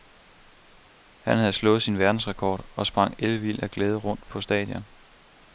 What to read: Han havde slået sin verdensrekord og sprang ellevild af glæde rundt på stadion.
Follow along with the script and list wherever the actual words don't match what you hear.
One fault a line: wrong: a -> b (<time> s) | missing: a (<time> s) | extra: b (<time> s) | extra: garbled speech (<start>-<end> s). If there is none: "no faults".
no faults